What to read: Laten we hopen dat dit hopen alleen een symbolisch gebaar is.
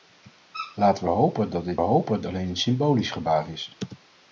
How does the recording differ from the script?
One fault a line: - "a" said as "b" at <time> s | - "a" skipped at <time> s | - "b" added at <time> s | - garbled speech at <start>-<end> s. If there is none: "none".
none